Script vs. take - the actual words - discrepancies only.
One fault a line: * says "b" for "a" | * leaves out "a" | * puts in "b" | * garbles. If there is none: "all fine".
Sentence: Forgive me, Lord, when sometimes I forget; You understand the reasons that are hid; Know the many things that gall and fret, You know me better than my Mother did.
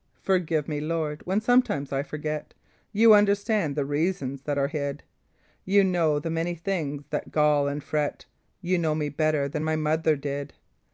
* puts in "You"